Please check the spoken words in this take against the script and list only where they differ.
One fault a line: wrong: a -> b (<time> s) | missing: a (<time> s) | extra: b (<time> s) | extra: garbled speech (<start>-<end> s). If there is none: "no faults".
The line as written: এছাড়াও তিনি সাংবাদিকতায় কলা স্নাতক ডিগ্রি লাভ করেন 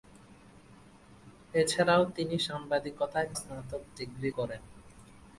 missing: কলা (3.3 s)
missing: লাভ (4.3 s)